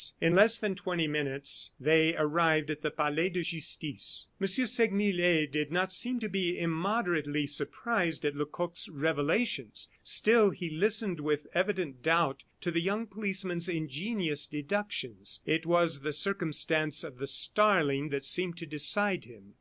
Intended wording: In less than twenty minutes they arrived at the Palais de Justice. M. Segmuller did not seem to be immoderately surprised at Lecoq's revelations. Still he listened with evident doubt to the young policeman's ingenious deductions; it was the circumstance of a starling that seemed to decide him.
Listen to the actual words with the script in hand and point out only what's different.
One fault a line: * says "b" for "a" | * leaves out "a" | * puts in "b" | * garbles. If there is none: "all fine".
* says "the" for "a"